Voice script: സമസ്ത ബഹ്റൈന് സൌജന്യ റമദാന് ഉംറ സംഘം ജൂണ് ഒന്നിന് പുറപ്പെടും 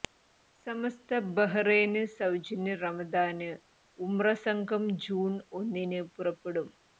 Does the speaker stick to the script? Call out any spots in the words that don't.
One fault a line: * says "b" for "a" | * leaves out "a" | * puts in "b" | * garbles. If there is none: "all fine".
all fine